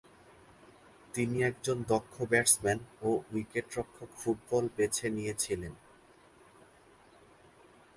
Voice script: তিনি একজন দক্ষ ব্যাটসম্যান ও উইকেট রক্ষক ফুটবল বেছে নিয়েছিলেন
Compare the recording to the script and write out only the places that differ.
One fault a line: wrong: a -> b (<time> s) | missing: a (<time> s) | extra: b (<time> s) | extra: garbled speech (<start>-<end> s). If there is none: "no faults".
no faults